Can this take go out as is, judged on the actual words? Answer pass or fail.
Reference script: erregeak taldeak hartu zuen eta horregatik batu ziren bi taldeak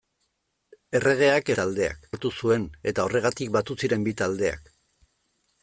pass